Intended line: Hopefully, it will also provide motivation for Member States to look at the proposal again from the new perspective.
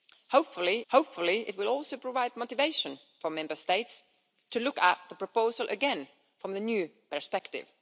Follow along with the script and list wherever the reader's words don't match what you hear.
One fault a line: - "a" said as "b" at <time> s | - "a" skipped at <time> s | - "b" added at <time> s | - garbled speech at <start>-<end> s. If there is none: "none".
- "hopefully" added at 0.9 s